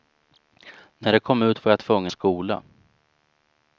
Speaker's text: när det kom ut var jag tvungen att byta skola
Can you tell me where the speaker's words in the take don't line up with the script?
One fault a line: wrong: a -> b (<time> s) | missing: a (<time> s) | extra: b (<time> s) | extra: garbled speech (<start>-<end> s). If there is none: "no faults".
missing: att byta (2.1 s)